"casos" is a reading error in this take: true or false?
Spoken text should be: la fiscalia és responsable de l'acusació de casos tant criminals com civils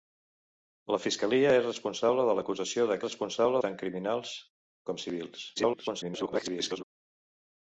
true